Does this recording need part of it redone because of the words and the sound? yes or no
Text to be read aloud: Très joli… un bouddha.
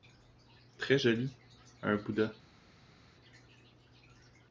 no